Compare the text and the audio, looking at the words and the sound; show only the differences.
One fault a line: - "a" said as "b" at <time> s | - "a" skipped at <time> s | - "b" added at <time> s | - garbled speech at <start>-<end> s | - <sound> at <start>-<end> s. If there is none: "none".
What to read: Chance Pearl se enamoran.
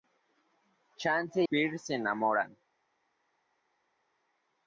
none